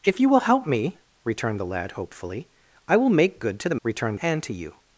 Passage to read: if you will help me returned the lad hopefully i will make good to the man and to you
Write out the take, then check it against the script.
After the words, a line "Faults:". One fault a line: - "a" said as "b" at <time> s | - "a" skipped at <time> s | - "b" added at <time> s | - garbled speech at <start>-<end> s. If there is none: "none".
if you will help me returned the lad hopefully i will make good to the returned and to you
Faults:
- "man" said as "returned" at 3.8 s